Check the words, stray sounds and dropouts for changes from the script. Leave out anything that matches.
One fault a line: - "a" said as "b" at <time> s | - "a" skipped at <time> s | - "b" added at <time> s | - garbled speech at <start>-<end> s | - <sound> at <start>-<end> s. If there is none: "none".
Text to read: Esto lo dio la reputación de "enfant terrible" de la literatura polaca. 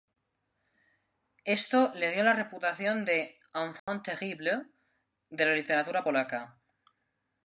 - "lo" said as "le" at 1.9 s
- dropout at 3.8-3.9 s